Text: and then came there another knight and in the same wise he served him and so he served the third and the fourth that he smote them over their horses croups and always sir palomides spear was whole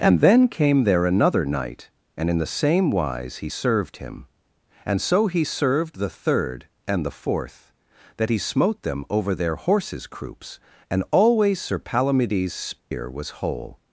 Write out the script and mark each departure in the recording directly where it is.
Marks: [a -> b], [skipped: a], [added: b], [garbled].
and then came there another knight and in the same wise he served him and so he served the third and the fourth that he smote them over their horses croups and always sir palomides spear was whole